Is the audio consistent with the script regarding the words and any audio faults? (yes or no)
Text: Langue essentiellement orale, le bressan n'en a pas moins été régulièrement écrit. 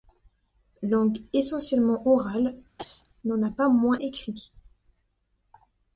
no